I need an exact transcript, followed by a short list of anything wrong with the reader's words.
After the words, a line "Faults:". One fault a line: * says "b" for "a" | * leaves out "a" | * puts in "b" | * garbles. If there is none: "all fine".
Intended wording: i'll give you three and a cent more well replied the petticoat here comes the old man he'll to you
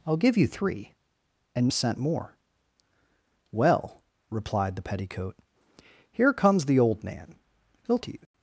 i'll give you three and a cent more well replied the petticoat here comes the old man he'll to you
Faults:
all fine